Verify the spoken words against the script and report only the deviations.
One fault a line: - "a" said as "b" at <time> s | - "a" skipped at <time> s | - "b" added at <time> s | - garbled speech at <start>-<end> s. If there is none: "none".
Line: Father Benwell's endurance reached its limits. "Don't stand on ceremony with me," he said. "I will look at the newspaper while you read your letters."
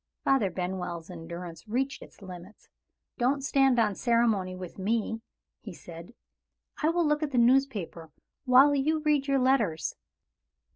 none